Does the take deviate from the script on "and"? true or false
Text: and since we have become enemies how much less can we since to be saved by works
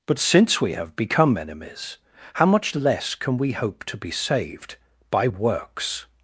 true